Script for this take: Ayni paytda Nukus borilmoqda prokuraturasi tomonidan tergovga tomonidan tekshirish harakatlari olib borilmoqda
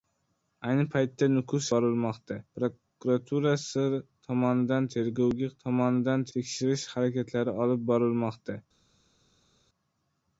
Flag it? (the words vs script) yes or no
no